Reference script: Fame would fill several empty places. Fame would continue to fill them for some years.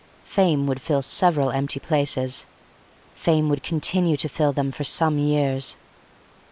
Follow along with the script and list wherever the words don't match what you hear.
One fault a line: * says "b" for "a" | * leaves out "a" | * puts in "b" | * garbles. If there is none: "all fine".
all fine